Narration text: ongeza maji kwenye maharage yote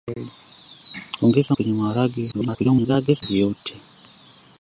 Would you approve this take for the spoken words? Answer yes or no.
no